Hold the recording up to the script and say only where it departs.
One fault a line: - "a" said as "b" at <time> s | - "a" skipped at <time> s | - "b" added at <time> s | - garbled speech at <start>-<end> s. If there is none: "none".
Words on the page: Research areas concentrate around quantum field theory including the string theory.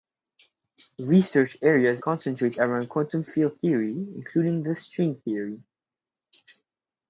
none